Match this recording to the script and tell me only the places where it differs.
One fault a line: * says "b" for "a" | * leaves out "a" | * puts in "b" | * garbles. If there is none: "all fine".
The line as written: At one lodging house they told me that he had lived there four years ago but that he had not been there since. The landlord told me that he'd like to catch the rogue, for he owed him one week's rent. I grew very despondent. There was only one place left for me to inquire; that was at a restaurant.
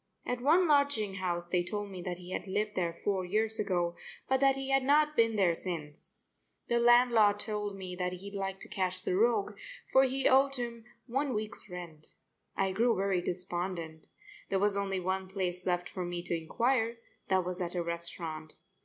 all fine